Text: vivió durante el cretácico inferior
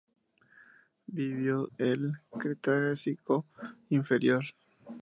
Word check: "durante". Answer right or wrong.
wrong